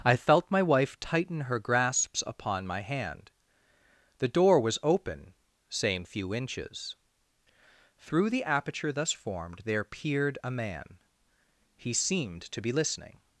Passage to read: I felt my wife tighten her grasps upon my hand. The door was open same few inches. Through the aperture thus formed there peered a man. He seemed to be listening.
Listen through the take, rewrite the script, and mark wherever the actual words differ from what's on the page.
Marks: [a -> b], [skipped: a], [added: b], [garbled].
I felt my wife tighten her grasps upon my hand. The door was open same few inches. Through the aperture thus formed there peered a man. He seemed to be listening.